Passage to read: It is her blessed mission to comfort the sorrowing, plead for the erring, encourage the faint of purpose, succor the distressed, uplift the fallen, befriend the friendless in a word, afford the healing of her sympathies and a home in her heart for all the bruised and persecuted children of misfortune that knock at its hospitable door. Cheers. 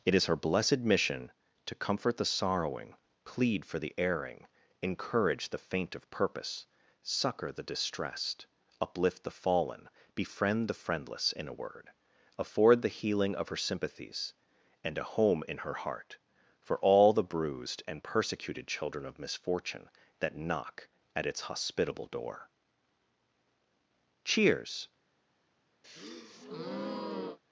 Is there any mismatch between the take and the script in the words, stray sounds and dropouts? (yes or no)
yes